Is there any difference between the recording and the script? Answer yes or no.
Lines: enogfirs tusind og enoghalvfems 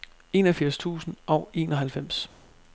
no